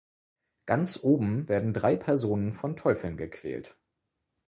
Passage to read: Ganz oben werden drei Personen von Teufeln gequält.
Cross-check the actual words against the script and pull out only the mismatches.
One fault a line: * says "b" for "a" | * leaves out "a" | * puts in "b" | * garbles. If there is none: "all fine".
all fine